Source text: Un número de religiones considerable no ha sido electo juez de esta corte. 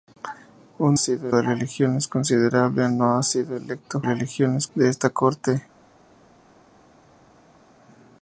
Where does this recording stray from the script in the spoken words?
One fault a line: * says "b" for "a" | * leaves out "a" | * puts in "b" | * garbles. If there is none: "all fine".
* says "sido" for "número"
* says "religiones" for "juez"